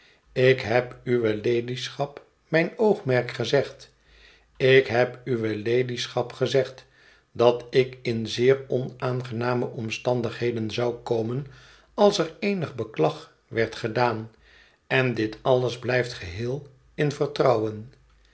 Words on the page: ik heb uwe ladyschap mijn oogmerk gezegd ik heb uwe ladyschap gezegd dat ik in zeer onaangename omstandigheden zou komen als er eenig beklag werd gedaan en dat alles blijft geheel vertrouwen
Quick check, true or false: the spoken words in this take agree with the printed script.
false